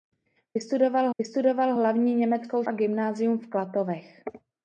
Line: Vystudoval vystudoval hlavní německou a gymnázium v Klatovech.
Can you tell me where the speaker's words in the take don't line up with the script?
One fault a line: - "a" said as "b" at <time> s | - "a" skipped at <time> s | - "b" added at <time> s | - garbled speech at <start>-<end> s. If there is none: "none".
none